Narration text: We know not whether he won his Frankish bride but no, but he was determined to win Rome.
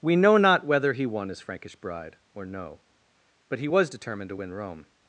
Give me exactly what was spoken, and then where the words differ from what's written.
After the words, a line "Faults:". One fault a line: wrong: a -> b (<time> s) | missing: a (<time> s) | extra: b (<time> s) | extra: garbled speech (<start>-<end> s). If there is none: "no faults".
We know not whether he won his Frankish bride or no, but he was determined to win Rome.
Faults:
wrong: but -> or (2.3 s)